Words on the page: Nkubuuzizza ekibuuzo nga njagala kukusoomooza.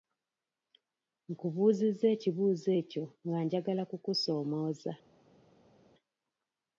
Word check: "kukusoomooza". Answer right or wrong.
right